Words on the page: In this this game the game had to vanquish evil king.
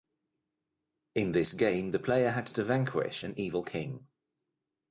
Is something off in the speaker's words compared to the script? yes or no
yes